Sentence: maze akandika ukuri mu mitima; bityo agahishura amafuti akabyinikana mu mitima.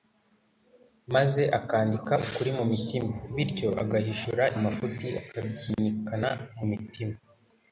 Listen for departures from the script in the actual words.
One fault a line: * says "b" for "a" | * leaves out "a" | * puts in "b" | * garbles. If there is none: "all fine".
all fine